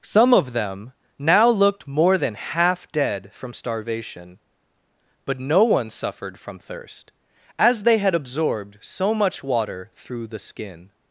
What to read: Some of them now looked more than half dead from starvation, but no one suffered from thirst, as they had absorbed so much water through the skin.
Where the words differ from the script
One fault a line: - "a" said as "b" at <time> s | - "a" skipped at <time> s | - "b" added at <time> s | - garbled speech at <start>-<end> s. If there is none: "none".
none